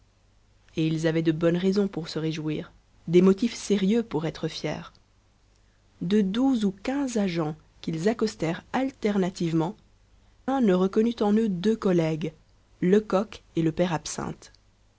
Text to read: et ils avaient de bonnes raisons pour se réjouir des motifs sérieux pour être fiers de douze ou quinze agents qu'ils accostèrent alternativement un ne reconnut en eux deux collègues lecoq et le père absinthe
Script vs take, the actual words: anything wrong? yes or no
no